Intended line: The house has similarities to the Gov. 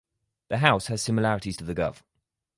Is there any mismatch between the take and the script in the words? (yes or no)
no